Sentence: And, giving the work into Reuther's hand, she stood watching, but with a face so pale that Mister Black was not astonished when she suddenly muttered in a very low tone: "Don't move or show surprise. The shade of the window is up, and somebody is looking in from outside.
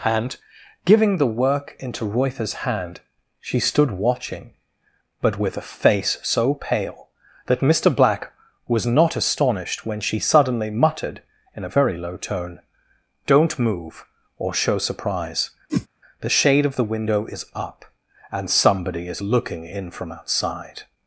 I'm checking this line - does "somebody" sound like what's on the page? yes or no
yes